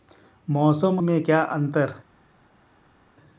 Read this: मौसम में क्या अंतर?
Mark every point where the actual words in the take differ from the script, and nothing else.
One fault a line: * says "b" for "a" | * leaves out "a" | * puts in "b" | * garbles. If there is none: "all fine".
all fine